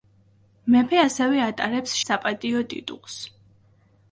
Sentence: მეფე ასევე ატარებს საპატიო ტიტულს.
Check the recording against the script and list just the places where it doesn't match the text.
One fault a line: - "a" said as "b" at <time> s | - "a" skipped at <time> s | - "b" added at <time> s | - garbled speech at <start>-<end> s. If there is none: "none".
none